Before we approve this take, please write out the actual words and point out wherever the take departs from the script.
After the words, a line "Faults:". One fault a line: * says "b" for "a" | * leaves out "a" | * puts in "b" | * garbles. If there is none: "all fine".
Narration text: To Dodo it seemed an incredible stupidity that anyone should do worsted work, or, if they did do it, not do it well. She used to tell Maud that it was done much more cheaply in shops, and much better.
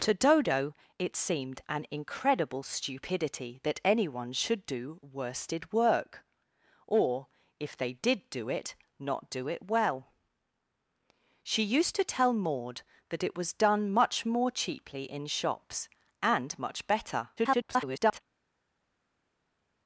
To Dodo it seemed an incredible stupidity that anyone should do worsted work, or, if they did do it, not do it well. She used to tell Maud that it was done much more cheaply in shops, and much better. [garbled]
Faults:
* garbles